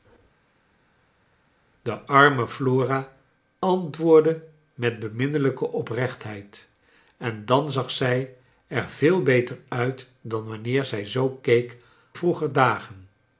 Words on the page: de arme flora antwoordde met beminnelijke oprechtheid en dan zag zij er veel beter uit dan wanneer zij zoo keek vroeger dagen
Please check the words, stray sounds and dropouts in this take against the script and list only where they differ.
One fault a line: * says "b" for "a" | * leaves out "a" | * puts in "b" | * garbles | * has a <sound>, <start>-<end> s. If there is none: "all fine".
all fine